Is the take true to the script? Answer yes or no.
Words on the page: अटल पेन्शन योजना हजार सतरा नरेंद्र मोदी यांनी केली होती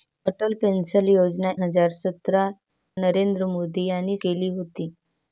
yes